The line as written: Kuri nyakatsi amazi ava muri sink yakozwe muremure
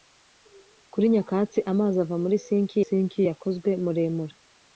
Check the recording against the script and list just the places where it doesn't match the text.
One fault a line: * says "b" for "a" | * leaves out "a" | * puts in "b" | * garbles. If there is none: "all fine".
* puts in "sink"